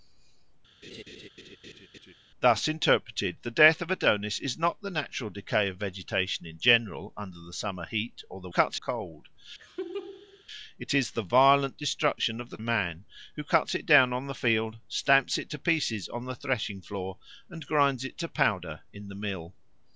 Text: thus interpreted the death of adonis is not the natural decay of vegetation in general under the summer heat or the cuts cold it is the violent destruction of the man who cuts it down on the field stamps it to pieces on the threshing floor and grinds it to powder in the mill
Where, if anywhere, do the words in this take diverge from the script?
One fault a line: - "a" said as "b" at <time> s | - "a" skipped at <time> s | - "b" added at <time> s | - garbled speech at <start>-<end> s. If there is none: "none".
none